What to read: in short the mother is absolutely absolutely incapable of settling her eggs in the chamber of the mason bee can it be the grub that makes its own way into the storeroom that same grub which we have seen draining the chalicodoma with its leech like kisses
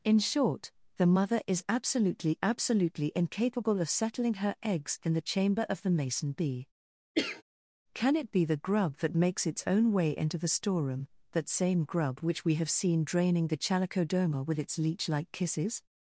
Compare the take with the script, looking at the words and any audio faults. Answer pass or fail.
fail